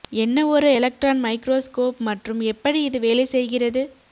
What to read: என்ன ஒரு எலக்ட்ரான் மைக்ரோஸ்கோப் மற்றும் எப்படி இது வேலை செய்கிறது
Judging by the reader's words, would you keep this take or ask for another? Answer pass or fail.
pass